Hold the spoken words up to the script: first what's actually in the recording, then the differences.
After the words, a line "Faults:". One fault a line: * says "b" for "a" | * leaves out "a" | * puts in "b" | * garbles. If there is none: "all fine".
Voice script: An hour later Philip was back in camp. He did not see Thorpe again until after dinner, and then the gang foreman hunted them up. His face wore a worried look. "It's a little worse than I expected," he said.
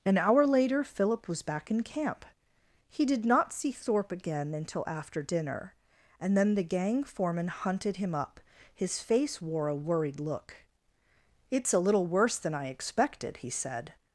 An hour later Philip was back in camp. He did not see Thorpe again until after dinner, and then the gang foreman hunted him up. His face wore a worried look. "It's a little worse than I expected," he said.
Faults:
* says "him" for "them"